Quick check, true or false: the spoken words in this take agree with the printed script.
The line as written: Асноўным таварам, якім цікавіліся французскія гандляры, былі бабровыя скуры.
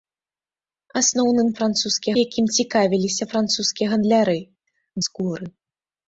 false